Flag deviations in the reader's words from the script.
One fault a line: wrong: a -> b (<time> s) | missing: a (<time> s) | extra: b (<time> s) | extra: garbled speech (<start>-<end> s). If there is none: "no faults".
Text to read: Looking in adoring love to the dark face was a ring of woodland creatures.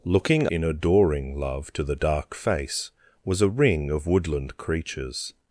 no faults